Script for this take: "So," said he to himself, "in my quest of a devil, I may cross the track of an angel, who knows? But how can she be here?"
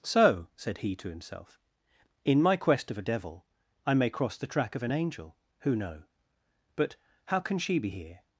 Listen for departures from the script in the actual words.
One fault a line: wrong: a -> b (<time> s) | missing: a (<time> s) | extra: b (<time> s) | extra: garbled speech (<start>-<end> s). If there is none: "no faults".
wrong: knows -> know (5.7 s)